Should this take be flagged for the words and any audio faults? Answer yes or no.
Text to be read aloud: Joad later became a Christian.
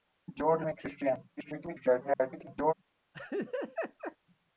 yes